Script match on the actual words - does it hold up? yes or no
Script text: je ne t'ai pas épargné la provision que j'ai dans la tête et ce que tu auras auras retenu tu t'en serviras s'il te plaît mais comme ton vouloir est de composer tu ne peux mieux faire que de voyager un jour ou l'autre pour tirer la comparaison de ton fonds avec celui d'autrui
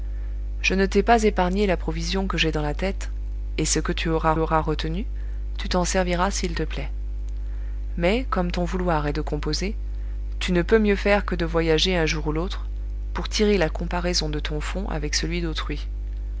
yes